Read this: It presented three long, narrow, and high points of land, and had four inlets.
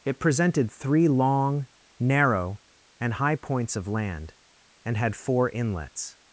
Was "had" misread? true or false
false